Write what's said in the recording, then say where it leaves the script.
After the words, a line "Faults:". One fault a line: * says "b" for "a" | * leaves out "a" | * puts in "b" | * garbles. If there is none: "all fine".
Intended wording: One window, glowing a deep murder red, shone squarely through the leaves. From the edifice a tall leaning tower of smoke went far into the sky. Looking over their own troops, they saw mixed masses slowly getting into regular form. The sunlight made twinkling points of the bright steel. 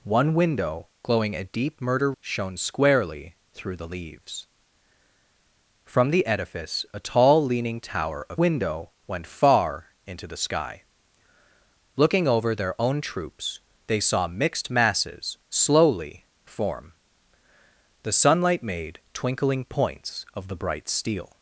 One window, glowing a deep murder shone squarely through the leaves. From the edifice a tall leaning tower of window went far into the sky. Looking over their own troops, they saw mixed masses slowly form. The sunlight made twinkling points of the bright steel.
Faults:
* leaves out "red"
* says "window" for "smoke"
* leaves out "getting into regular"